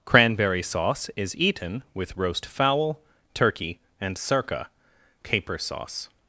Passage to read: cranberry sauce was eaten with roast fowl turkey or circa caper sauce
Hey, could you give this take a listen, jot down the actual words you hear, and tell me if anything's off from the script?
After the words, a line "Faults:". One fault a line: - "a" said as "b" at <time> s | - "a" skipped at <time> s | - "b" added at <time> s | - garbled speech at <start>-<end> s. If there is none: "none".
cranberry sauce is eaten with roast fowl turkey and circa caper sauce
Faults:
- "was" said as "is" at 1.2 s
- "or" said as "and" at 4.0 s